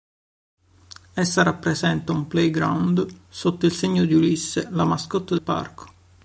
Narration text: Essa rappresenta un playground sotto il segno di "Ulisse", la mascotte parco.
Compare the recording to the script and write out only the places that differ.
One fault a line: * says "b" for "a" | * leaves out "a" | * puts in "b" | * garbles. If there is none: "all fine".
all fine